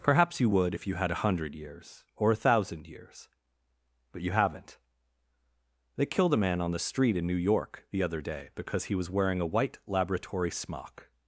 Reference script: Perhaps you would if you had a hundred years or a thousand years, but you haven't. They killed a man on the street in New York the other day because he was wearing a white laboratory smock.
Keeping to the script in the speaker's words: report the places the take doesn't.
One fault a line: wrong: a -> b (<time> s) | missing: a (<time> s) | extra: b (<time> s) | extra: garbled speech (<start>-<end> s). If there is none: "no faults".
no faults